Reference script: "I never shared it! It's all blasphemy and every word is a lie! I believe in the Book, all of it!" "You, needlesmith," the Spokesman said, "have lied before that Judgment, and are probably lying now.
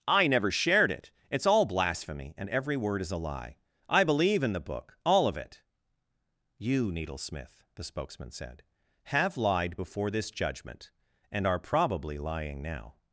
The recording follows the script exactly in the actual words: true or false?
false